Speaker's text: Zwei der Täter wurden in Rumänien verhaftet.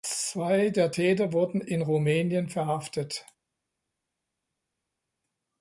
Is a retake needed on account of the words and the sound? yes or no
no